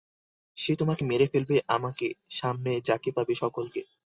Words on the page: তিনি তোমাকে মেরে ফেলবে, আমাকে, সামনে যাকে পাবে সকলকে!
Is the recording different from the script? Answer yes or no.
yes